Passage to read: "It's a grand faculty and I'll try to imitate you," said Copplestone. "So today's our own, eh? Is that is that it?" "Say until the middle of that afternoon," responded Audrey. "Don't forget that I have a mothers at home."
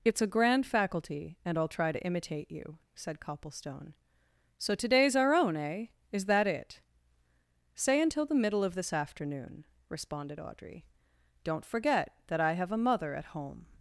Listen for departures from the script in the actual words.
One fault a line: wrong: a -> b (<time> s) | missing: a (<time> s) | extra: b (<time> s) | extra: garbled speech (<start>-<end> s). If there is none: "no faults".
missing: is that (6.5 s)
wrong: that -> this (8.7 s)
wrong: mothers -> mother (12.8 s)